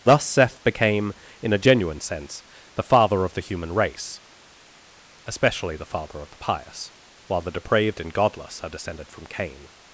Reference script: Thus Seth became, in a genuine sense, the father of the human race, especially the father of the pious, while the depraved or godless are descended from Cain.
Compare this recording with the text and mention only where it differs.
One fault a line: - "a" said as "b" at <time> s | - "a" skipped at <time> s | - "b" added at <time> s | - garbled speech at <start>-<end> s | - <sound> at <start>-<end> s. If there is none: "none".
- "or" said as "and" at 8.0 s